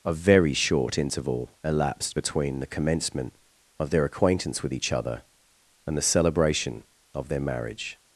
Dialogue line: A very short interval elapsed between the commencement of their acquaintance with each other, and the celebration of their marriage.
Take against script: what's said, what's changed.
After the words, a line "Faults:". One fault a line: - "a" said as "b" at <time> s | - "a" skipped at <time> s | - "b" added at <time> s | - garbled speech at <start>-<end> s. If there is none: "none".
A very short interval elapsed between the commencement of their acquaintance with each other, and the celebration of their marriage.
Faults:
none